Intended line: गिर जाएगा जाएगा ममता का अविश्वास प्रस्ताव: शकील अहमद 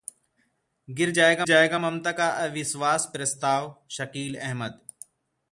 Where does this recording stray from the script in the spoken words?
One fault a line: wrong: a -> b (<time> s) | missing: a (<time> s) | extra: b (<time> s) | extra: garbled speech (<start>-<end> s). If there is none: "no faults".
no faults